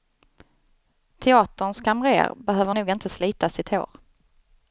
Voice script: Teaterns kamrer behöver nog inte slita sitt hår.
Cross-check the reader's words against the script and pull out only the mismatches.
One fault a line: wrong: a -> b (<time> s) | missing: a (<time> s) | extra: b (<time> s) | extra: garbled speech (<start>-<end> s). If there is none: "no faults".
no faults